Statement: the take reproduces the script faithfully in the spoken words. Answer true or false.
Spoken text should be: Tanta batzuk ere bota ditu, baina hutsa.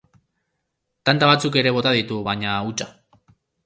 true